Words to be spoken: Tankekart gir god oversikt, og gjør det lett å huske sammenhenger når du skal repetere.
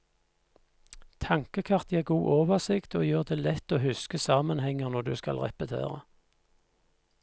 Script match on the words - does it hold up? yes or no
yes